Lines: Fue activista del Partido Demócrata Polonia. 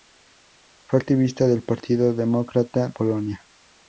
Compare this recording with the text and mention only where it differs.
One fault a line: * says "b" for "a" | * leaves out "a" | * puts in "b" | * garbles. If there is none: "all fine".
all fine